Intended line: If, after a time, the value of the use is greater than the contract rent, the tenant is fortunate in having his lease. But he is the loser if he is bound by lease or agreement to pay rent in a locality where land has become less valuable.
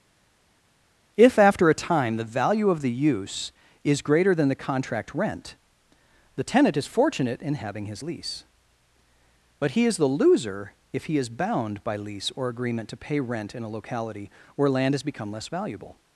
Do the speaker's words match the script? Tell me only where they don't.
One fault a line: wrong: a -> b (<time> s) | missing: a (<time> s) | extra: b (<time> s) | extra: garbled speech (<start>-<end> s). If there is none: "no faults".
no faults